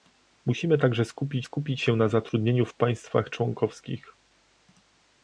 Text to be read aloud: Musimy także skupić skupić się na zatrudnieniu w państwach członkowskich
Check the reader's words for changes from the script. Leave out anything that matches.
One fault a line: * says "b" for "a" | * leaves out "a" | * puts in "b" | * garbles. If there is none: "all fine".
all fine